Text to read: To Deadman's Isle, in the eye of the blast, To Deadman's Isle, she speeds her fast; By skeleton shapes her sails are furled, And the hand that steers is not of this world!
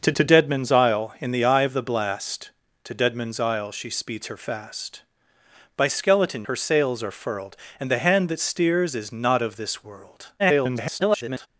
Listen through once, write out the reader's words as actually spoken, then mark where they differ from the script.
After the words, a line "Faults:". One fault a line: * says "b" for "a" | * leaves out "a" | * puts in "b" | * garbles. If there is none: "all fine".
To to Deadman's Isle, in the eye of the blast, To Deadman's Isle, she speeds her fast; By skeleton her sails are furled, And the hand that steers is not of this world! [garbled]
Faults:
* puts in "to"
* leaves out "shapes"
* garbles